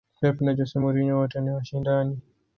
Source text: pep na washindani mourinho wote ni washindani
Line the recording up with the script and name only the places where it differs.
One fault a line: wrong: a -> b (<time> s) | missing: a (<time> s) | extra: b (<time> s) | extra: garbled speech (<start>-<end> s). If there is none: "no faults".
wrong: washindani -> jose (0.5 s)